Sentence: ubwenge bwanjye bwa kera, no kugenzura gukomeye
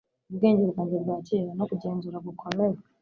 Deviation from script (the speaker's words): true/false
false